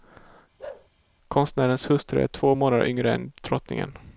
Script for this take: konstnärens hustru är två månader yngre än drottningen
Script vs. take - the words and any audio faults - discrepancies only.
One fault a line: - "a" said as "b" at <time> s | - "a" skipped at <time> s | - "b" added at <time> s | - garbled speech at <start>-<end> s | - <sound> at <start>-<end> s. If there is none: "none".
- bark at 0.6-0.9 s